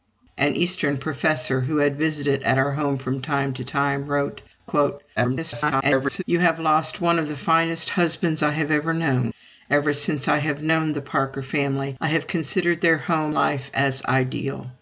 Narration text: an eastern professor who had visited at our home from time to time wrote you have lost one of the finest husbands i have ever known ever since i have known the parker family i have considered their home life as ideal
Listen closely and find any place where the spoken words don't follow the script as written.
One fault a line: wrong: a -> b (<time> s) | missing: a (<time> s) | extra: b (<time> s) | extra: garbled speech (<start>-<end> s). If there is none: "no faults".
extra: garbled speech (5.2-6.2 s)